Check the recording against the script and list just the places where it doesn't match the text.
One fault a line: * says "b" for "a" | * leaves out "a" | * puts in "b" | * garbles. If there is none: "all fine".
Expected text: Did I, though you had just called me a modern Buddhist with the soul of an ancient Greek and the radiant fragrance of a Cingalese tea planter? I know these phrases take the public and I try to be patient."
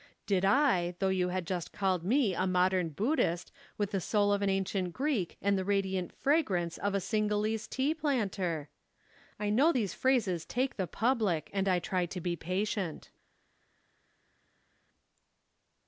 all fine